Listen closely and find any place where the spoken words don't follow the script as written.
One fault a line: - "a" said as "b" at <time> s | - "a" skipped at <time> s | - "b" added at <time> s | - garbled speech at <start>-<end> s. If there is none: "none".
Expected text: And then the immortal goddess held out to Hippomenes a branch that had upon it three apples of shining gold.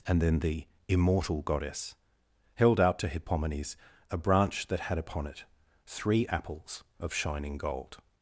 none